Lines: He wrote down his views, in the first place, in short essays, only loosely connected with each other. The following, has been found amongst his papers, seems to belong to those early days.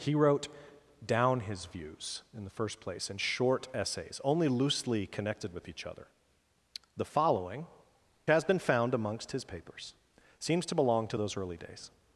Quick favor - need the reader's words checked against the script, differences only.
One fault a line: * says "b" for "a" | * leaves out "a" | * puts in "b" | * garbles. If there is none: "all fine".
all fine